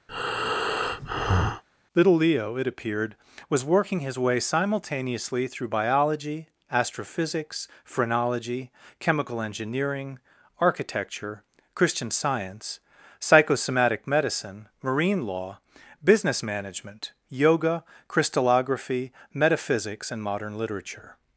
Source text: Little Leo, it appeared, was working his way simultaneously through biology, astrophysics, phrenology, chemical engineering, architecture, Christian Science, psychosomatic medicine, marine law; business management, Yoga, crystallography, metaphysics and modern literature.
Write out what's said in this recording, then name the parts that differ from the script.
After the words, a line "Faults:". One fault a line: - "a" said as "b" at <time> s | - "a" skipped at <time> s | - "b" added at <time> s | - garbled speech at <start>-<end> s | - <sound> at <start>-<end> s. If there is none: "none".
Little Leo, it appeared, was working his way simultaneously through biology, astrophysics, phrenology, chemical engineering, architecture, Christian Science, psychosomatic medicine, marine law; business management, Yoga, crystallography, metaphysics and modern literature.
Faults:
- breath at 0.1-1.6 s